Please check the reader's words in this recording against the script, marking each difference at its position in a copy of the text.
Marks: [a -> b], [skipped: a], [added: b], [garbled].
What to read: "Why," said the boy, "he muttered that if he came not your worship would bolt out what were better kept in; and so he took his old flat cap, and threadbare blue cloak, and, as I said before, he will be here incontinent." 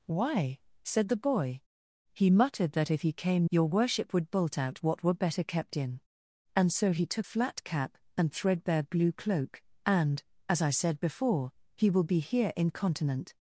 "Why," said the boy, "he muttered that if he came [skipped: not] your worship would bolt out what were better kept in; and so he took [skipped: his old] flat cap, and threadbare blue cloak, and, as I said before, he will be here incontinent."